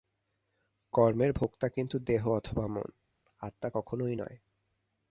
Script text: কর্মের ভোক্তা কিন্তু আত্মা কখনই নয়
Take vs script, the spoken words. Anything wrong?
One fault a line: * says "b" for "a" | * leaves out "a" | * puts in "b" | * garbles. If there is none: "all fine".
* puts in "দেহ অথবা মন"